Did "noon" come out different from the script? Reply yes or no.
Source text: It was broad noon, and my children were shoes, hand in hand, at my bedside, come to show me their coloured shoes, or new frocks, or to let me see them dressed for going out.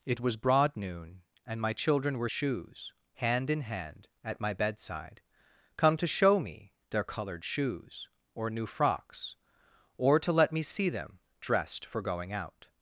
no